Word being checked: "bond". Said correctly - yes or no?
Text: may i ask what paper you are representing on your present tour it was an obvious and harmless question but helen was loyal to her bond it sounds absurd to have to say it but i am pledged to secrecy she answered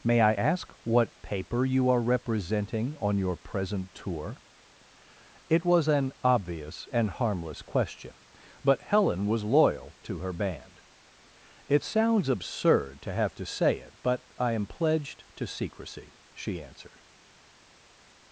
no